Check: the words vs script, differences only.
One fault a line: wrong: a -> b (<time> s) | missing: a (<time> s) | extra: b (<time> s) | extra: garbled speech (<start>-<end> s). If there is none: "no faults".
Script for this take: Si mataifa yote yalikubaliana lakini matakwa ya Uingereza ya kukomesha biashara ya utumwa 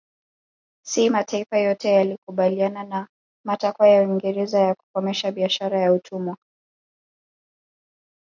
wrong: lakini -> na (2.8 s)